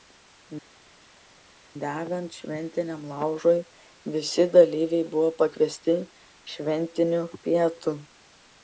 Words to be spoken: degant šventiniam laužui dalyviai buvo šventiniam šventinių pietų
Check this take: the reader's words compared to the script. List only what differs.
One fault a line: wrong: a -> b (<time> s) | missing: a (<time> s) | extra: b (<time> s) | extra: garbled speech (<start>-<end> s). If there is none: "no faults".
extra: visi (4.2 s)
wrong: šventiniam -> pakviesti (5.4 s)